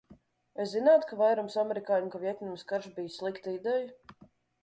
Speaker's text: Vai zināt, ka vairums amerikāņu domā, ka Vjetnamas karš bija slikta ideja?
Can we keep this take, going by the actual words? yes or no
no